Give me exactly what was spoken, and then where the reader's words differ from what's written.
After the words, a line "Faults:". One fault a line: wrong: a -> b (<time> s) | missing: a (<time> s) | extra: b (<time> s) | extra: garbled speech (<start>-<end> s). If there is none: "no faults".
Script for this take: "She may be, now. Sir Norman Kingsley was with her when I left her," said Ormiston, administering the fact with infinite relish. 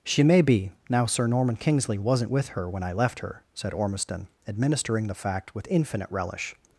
"She may be, now. Sir Norman Kingsley wasn't with her when I left her," said Ormiston, administering the fact with infinite relish.
Faults:
wrong: was -> wasn't (2.0 s)